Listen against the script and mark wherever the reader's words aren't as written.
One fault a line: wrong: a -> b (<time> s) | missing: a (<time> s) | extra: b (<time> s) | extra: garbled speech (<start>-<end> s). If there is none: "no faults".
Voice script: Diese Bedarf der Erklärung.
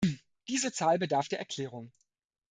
extra: Zahl (0.7 s)